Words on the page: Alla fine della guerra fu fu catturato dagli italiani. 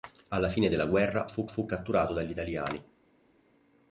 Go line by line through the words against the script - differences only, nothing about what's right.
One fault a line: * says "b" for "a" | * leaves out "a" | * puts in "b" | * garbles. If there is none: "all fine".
all fine